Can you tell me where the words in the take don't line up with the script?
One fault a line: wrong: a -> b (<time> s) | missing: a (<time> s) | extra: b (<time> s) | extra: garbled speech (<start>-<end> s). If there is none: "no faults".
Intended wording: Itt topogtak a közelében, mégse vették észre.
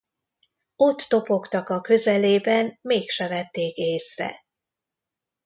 wrong: Itt -> Ott (0.8 s)